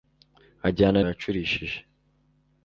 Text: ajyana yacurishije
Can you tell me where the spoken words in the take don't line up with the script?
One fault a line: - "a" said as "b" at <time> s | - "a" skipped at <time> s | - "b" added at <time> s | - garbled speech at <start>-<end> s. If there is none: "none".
none